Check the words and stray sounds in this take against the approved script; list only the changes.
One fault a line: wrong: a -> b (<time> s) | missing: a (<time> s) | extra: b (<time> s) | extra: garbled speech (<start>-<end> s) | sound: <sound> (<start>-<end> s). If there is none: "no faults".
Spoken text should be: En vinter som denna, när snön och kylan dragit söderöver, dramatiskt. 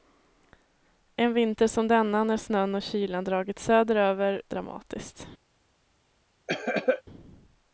sound: cough (6.5-7.0 s)